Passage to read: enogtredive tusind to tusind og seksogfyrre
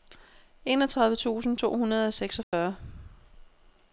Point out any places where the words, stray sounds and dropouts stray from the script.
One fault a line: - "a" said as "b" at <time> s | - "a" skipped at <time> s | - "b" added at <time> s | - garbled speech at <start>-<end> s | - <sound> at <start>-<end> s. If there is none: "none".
- "tusind" said as "hundrede" at 1.8 s
- dropout at 2.4-2.5 s